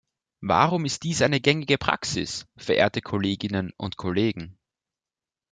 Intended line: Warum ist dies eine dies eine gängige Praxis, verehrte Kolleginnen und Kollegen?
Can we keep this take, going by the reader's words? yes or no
no